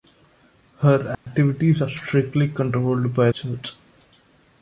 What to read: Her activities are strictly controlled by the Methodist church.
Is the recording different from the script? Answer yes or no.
yes